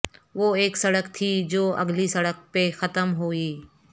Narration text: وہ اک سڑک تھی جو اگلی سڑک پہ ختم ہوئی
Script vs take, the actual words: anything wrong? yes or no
no